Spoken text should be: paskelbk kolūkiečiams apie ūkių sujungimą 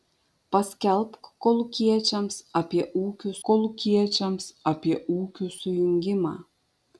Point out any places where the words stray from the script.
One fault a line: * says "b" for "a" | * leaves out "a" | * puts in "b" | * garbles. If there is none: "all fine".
* puts in "kolūkiečiams apie ūkių"